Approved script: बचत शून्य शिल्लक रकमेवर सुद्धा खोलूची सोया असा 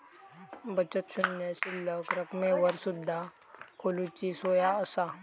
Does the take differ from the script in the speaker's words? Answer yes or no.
no